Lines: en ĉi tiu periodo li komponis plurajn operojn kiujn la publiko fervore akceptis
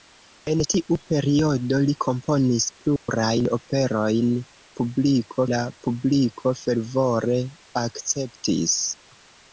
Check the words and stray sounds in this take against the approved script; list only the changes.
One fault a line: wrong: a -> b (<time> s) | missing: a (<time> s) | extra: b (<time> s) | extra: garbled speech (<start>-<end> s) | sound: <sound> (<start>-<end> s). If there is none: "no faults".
missing: ĉi (0.6 s)
sound: dropout (3.0-3.1 s)
wrong: kiujn -> publiko (4.8 s)